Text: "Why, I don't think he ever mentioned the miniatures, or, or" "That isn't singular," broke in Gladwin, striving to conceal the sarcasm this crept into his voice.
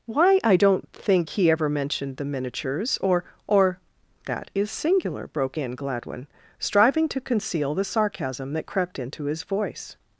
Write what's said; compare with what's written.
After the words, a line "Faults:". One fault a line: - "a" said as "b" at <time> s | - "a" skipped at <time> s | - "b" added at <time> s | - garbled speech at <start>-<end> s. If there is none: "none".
"Why, I don't think he ever mentioned the miniatures, or, or" "That is singular," broke in Gladwin, striving to conceal the sarcasm that crept into his voice.
Faults:
- "isn't" said as "is" at 4.5 s
- "this" said as "that" at 8.5 s